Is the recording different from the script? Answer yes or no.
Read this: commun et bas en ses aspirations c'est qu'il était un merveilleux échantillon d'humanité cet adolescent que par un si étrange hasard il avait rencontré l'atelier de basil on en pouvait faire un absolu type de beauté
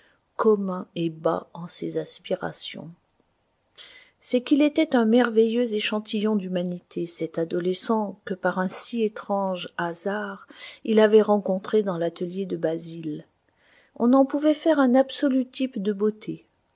yes